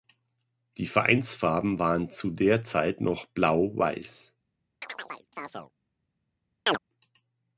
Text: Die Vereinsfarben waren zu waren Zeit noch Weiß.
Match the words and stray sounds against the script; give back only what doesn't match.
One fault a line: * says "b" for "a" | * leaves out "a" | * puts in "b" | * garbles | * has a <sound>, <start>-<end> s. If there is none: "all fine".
* says "der" for "waren"
* puts in "Blau"
* has a chirp, 4.8-5.7 s
* has a chirp, 6.7-6.8 s